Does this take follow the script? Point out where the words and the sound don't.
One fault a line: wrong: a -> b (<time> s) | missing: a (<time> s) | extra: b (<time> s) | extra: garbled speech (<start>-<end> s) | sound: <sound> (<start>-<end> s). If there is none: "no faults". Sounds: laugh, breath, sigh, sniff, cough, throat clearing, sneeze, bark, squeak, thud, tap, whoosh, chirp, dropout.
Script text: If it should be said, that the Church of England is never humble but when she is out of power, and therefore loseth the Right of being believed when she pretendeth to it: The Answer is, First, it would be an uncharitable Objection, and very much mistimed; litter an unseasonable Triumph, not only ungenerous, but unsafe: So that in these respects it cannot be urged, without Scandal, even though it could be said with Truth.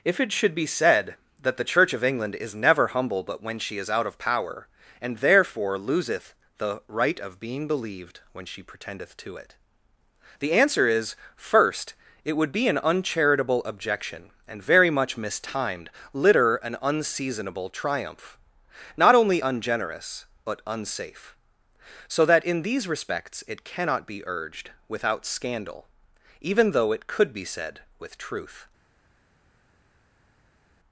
no faults